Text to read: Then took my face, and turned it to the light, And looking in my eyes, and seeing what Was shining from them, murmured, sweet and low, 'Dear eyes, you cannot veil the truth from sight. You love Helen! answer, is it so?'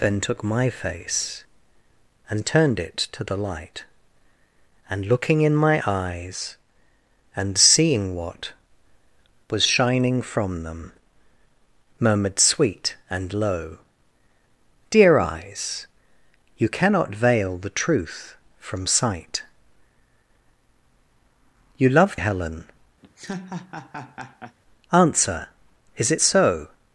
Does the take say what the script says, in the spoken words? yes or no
yes